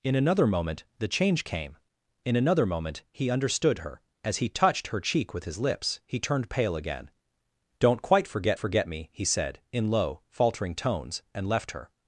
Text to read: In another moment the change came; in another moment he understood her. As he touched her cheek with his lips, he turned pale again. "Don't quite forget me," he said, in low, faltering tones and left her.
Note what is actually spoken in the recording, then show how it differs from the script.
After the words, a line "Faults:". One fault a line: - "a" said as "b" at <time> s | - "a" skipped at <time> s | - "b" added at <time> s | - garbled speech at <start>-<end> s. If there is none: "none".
In another moment the change came; in another moment he understood her. As he touched her cheek with his lips, he turned pale again. "Don't quite forget forget me," he said, in low, faltering tones and left her.
Faults:
- "forget" added at 8.6 s